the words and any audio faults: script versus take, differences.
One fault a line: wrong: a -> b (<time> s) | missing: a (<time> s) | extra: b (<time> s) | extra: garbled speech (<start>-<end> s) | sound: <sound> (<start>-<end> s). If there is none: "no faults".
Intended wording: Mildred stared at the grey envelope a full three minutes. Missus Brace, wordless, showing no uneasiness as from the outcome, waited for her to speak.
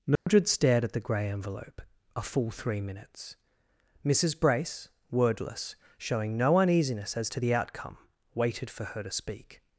sound: dropout (0.2-0.3 s)
wrong: from -> to (7.3 s)